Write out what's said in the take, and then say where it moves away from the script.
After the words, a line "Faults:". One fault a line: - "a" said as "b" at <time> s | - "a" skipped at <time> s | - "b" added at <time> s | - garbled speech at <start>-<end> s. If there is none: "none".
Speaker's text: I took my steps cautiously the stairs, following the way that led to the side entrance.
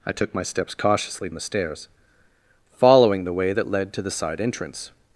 I took my steps cautiously the stairs, following the way that led to the side entrance.
Faults:
none